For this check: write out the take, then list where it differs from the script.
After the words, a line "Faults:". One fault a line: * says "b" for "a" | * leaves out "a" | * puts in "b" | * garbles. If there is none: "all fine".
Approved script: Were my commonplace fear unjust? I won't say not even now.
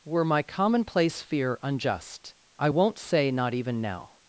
Were my commonplace fear unjust? I won't say not even now.
Faults:
all fine